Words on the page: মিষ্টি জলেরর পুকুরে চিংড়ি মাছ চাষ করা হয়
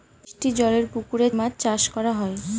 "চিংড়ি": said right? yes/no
no